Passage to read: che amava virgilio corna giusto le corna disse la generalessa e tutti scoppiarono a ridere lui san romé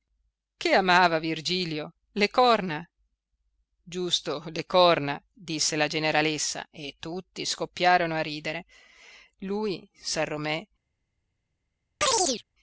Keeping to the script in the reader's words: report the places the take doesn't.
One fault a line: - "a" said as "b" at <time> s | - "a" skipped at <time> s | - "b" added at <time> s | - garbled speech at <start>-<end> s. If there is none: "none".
- "le" added at 2.1 s